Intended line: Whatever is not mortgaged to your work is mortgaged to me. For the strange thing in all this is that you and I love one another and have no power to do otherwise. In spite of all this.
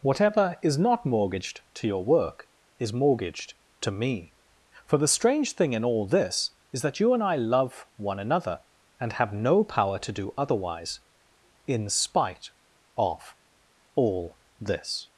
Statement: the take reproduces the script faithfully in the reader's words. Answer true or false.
true